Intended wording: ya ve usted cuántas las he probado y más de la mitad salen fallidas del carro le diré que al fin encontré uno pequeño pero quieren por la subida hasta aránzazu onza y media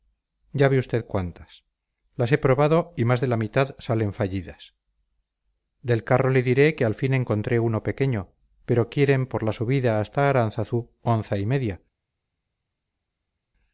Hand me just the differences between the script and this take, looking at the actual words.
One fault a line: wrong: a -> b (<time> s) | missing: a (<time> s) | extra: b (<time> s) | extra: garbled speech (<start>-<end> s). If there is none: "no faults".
no faults